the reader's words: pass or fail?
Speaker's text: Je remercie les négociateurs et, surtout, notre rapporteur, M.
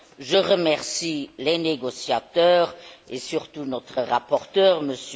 pass